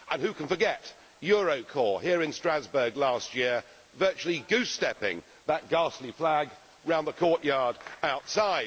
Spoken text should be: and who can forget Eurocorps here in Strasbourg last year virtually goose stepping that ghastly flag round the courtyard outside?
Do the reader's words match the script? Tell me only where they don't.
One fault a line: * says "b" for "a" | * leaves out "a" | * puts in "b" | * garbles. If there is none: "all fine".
all fine